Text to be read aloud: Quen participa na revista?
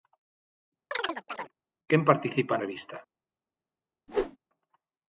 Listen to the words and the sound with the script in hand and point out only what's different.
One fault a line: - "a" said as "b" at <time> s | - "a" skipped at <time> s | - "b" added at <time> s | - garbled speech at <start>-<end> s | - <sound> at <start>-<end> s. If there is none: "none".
- chirp at 0.9-1.5 s
- "na" skipped at 2.5 s
- whoosh at 4.1-4.4 s